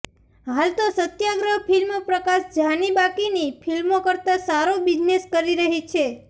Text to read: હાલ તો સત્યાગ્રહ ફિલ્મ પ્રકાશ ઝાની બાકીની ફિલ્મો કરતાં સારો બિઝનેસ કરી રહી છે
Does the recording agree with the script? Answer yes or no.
yes